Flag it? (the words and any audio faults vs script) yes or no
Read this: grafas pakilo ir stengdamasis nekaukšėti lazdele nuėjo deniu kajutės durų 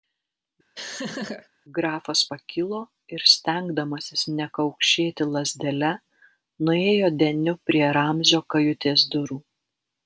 yes